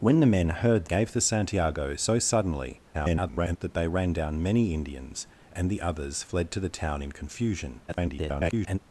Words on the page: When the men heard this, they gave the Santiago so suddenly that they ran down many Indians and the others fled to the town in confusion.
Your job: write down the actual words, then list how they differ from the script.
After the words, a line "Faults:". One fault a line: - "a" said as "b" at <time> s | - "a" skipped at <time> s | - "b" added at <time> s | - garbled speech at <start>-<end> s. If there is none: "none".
When the men heard gave the Santiago so suddenly [garbled] that they ran down many Indians and the others fled to the town in confusion. [garbled]
Faults:
- "this they" skipped at 0.8 s
- garbled speech at 2.9-3.6 s
- garbled speech at 7.9-8.8 s